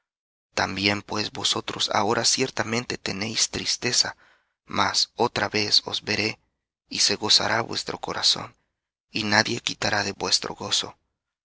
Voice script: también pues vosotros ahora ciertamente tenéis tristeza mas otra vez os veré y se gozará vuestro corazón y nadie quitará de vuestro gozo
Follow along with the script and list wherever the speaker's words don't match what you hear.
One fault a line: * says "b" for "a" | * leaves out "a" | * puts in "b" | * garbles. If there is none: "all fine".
all fine